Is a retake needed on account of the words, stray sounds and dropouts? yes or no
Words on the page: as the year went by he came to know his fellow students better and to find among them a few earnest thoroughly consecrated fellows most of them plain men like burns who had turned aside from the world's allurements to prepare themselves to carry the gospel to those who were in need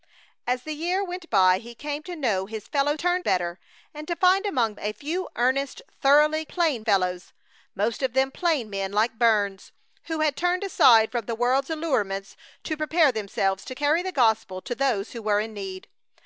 yes